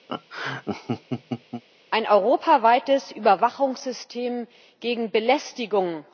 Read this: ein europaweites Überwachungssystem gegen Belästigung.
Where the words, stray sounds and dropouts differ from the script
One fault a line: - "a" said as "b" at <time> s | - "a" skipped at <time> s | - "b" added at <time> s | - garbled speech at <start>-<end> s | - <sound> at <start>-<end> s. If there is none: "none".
- laugh at 0.1-1.6 s